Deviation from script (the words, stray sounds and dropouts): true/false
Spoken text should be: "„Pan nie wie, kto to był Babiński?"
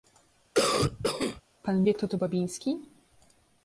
true